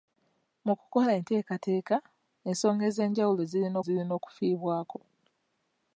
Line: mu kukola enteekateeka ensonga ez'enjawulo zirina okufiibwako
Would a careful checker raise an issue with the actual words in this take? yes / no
yes